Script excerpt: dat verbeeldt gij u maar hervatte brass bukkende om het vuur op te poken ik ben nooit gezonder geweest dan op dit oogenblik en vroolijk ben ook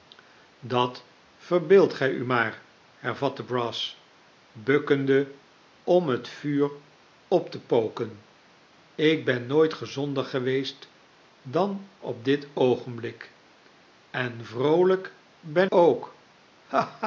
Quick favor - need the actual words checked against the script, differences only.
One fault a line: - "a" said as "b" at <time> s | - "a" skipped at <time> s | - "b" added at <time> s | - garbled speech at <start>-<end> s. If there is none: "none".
none